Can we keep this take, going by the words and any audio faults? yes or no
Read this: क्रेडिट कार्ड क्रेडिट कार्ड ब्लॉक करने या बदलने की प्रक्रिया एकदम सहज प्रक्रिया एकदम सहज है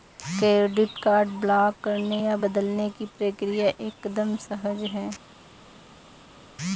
no